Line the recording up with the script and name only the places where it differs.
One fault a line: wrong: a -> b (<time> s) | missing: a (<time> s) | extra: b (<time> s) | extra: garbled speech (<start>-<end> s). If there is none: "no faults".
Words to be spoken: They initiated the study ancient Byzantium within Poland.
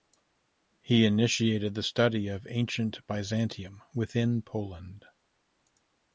wrong: They -> He (0.8 s)
extra: of (2.3 s)